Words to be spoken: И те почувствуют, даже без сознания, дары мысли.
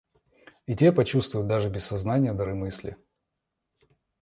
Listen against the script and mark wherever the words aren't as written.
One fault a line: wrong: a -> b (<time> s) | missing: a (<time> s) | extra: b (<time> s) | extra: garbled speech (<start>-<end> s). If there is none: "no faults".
no faults